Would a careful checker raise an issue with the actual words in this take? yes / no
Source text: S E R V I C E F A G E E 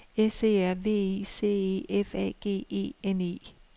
yes